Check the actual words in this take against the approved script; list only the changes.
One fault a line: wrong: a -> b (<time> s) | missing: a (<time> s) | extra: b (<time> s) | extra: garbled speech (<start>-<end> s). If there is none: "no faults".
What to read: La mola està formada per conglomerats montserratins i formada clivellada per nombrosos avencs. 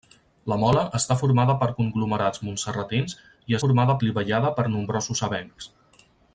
no faults